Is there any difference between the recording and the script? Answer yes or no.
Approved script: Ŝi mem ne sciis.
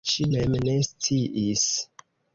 no